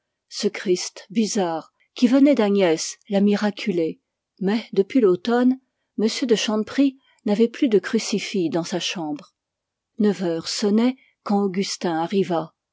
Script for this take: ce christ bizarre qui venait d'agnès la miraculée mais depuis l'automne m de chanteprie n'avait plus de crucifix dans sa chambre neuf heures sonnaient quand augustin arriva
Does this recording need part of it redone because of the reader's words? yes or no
no